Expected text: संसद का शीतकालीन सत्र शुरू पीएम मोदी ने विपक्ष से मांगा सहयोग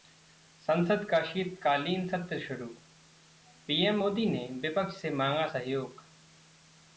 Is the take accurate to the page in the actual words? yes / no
yes